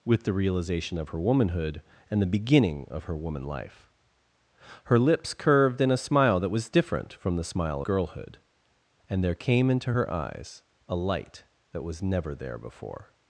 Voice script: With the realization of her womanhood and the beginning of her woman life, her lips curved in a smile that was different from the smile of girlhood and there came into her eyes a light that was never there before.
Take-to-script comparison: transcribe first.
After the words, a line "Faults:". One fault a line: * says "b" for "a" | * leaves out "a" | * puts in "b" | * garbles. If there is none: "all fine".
With the realization of her womanhood and the beginning of her woman life, her lips curved in a smile that was different from the smile girlhood and there came into her eyes a light that was never there before.
Faults:
* leaves out "of"